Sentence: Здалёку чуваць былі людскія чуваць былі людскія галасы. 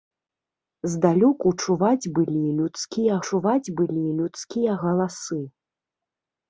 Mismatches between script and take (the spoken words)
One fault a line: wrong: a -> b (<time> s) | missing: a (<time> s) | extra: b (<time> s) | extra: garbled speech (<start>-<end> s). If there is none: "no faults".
no faults